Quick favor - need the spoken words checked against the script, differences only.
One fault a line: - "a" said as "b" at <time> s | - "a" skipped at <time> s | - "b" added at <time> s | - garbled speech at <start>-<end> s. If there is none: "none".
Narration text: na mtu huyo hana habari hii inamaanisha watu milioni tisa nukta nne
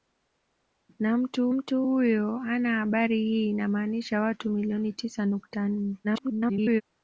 - "mtu" added at 1.5 s
- garbled speech at 6.0-6.8 s